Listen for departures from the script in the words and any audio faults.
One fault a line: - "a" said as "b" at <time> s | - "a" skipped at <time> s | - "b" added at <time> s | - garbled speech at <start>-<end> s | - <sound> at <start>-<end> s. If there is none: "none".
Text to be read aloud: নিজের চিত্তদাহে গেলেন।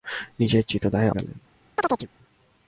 - chirp at 1.8-2.1 s